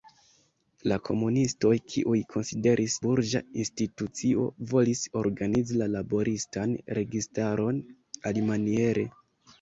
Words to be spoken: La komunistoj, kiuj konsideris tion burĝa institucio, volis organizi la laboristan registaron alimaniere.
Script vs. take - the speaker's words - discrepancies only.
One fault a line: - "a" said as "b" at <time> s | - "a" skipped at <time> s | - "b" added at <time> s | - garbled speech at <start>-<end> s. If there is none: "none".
- "tion" skipped at 3.0 s